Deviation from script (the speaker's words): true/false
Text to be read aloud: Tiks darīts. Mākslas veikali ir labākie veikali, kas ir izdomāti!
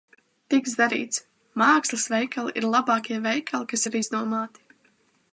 false